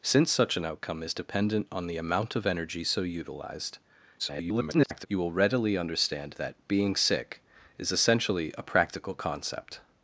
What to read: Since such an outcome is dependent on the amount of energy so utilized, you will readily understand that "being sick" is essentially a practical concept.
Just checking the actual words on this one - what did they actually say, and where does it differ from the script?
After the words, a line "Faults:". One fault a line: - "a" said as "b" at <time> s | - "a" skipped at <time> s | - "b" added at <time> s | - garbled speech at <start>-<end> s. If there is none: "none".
Since such an outcome is dependent on the amount of energy so utilized, [garbled] you will readily understand that "being sick" is essentially a practical concept.
Faults:
- garbled speech at 4.2-5.1 s